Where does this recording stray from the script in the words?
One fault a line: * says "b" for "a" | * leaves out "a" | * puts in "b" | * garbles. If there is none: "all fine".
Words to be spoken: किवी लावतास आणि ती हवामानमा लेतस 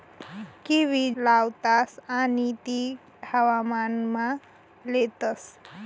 all fine